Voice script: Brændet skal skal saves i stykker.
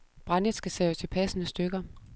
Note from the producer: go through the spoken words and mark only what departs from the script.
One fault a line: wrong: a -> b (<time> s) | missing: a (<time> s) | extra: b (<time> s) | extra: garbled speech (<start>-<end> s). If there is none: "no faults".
missing: skal (0.7 s)
extra: passende (1.1 s)